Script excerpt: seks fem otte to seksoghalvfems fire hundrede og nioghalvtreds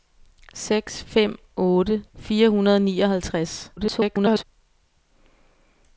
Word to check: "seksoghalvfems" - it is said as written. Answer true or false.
false